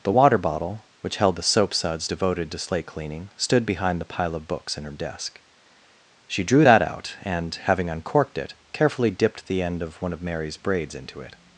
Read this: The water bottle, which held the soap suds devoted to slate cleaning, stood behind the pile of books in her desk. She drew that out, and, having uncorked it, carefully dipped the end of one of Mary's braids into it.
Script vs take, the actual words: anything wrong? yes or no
no